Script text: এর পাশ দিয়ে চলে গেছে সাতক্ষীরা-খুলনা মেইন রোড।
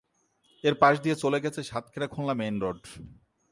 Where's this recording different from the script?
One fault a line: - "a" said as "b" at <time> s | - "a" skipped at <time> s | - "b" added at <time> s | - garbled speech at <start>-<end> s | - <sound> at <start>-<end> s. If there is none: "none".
none